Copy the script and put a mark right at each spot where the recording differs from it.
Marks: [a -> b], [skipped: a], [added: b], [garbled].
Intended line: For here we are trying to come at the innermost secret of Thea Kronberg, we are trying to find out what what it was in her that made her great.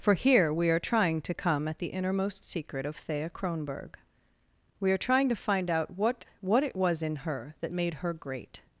For here we are trying to come at the innermost secret of Thea Kronberg, we are trying to find out what what it was in her that made her great.